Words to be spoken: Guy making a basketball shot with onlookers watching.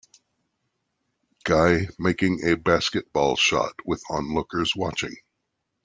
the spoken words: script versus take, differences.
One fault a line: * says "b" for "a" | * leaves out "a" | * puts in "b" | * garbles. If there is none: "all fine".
all fine